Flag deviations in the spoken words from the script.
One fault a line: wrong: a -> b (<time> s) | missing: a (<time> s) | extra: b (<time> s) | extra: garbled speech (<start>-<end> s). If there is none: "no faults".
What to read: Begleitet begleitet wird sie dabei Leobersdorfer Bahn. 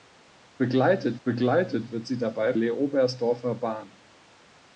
no faults